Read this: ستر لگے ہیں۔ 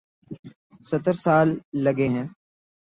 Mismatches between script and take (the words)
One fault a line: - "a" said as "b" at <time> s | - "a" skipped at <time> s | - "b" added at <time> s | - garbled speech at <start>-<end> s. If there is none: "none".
- "سال" added at 1.1 s